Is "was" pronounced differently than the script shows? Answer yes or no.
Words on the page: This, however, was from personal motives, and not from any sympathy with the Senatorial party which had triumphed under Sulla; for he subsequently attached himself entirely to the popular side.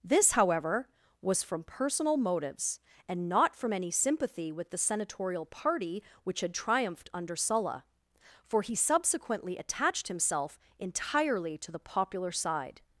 no